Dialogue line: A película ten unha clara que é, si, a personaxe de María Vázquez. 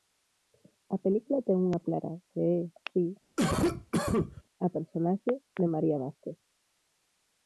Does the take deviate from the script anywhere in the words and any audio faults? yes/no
yes